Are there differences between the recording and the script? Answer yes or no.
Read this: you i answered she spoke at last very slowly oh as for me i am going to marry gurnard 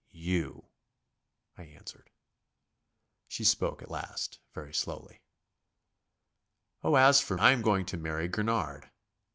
yes